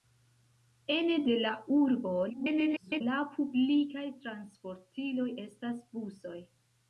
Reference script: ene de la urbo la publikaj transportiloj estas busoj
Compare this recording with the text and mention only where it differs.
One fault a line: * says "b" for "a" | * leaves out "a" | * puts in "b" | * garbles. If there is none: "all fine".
* garbles